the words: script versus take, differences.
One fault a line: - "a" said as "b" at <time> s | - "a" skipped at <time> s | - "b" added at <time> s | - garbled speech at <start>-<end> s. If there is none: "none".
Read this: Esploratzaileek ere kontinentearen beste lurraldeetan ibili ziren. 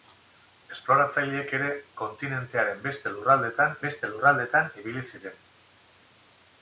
- "beste lurraldeetan" added at 3.9 s